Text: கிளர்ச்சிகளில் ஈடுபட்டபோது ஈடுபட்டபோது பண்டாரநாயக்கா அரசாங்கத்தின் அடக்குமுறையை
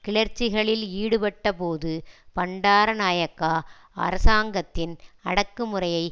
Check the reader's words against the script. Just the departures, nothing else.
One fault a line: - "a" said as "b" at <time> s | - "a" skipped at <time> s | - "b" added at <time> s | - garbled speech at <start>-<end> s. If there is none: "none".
- "ஈடுபட்டபோது" skipped at 1.9 s